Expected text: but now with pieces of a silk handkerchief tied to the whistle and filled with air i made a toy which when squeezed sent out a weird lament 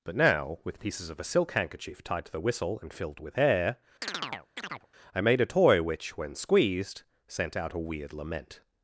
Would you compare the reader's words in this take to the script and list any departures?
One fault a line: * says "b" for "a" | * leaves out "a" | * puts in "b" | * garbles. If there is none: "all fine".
all fine